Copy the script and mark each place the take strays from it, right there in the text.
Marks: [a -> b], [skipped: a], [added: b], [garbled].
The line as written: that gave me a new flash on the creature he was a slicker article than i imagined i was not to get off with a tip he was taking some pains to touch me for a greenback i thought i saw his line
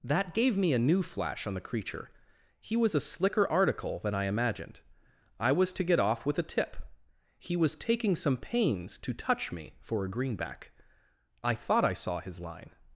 that gave me a new flash on the creature he was a slicker article than i imagined i was [skipped: not] to get off with a tip he was taking some pains to touch me for a greenback i thought i saw his line